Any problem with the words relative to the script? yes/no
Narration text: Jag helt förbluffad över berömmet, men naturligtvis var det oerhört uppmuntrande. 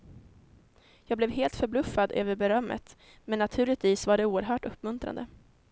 yes